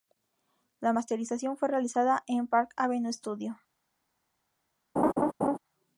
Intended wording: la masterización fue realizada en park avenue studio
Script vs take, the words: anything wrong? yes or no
no